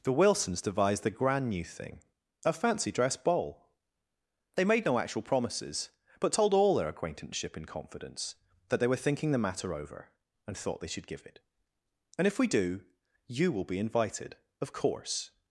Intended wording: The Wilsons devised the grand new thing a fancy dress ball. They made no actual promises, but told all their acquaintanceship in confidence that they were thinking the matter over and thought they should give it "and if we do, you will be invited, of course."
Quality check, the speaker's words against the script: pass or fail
pass